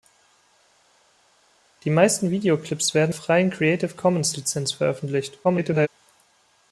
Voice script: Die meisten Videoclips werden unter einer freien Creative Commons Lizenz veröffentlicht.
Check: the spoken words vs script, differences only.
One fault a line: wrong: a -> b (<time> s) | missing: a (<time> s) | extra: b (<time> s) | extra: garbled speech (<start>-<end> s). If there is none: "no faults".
missing: unter einer (3.1 s)
extra: garbled speech (5.4-5.9 s)